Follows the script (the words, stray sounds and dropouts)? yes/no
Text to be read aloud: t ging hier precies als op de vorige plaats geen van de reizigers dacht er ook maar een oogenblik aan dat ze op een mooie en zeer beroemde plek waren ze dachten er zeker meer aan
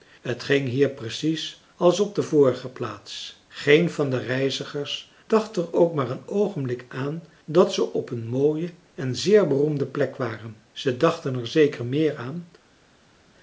yes